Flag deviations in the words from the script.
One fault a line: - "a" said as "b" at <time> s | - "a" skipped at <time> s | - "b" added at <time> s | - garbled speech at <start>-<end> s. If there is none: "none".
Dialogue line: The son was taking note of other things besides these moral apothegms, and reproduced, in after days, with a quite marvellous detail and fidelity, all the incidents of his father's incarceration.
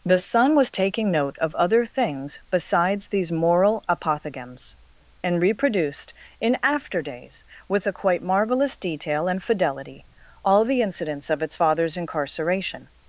- "his" said as "its" at 11.4 s